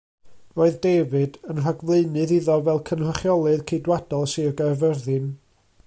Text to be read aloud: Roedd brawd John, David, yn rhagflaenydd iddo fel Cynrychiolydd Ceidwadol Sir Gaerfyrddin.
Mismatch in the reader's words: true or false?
true